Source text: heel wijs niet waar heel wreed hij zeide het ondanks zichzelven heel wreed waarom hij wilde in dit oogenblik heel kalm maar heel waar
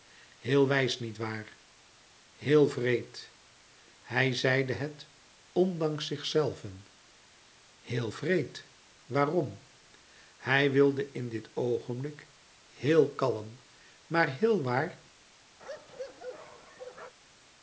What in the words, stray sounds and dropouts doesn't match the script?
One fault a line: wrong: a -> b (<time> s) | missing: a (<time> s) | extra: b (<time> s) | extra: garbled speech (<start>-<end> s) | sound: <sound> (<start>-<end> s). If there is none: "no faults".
sound: bark (15.6-17.1 s)